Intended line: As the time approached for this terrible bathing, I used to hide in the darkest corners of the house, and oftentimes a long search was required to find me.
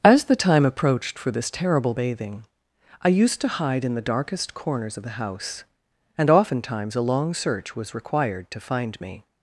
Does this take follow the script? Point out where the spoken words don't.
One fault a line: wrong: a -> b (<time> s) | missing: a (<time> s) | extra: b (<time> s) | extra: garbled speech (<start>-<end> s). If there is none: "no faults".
no faults